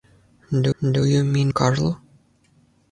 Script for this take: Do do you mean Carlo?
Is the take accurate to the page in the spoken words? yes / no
yes